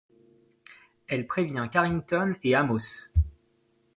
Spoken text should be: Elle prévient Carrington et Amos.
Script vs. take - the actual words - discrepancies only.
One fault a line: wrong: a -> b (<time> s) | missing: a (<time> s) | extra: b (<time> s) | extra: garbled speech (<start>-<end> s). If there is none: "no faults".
no faults